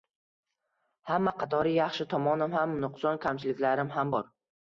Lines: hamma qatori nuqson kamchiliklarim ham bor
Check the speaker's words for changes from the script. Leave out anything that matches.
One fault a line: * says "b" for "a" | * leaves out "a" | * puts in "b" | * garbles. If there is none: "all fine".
* puts in "yaxshi tomonim ham"